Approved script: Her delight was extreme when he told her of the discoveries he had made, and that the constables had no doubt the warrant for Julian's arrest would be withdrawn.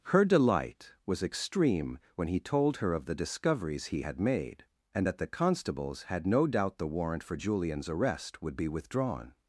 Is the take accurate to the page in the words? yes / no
yes